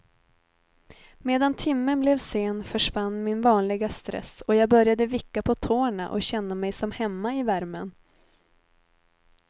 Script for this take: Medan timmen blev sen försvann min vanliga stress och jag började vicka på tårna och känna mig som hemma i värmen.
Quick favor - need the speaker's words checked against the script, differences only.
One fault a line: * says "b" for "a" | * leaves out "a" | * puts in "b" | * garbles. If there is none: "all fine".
all fine